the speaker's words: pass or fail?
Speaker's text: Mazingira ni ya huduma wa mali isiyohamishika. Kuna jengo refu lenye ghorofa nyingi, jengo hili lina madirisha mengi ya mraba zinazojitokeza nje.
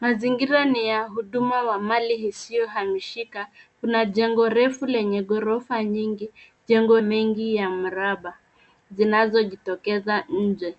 fail